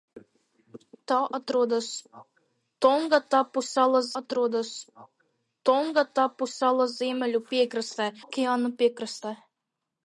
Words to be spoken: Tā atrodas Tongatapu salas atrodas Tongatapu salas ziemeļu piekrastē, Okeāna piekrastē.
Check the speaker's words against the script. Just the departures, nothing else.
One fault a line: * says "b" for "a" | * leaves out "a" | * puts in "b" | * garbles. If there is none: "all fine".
all fine